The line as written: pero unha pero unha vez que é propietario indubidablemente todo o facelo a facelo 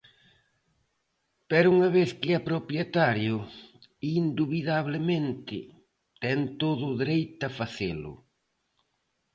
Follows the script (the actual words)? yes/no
no